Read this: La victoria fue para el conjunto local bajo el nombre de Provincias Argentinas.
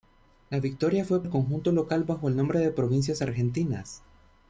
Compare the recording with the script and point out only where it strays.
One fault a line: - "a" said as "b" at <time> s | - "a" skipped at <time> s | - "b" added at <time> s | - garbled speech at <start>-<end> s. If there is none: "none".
- "para" skipped at 1.2 s